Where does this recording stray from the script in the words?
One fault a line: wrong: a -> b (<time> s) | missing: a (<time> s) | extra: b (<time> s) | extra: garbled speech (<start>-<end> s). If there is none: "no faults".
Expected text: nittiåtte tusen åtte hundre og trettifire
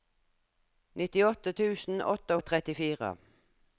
missing: hundre (2.4 s)